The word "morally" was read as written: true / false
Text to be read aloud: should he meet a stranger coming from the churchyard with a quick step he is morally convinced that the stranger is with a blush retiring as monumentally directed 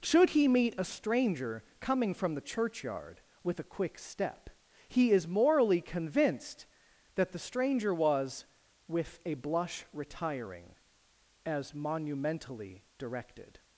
true